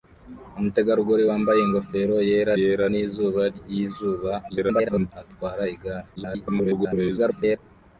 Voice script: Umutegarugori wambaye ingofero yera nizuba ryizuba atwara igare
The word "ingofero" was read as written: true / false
true